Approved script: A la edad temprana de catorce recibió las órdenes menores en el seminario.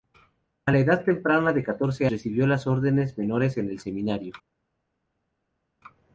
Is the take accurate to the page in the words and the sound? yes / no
yes